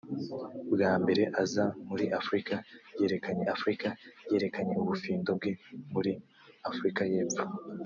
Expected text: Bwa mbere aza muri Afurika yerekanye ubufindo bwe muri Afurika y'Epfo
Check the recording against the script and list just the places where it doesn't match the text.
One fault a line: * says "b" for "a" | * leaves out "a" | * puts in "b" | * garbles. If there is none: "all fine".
* puts in "Afurika yerekanye"